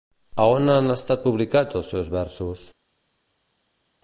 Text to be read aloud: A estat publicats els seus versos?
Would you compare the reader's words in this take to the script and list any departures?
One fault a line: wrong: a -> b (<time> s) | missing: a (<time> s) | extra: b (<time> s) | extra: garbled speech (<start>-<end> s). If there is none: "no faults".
extra: on han (0.5 s)